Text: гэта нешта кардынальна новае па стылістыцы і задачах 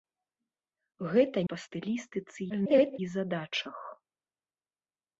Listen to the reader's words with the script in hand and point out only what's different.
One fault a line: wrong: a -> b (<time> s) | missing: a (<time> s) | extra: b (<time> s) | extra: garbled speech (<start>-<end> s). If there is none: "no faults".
missing: нешта кардынальна новае (1.4 s)
extra: garbled speech (2.5-3.0 s)